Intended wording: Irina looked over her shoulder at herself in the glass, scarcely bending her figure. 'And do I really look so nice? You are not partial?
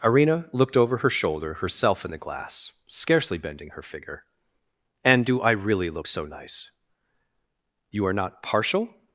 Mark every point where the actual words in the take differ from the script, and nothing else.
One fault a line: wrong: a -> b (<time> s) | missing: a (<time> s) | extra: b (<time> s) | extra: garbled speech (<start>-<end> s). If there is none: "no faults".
missing: at (1.6 s)